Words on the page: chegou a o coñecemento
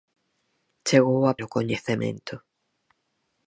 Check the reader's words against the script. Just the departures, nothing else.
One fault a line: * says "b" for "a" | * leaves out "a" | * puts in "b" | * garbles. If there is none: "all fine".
all fine